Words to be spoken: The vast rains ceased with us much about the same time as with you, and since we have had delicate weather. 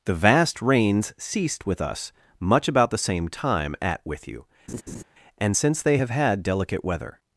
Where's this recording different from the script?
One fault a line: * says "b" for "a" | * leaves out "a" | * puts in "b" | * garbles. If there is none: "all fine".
* says "at" for "as"
* says "they" for "we"